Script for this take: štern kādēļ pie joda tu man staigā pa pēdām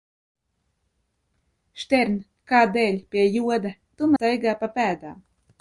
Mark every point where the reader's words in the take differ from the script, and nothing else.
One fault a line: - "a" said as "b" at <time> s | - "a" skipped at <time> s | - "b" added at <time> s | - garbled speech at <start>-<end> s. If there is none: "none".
- "man" skipped at 4.1 s